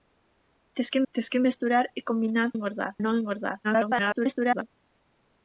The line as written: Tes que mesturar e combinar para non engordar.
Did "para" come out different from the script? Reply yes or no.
yes